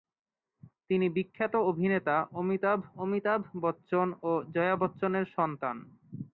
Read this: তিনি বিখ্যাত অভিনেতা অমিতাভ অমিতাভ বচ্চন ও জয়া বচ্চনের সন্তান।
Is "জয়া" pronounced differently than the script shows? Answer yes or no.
no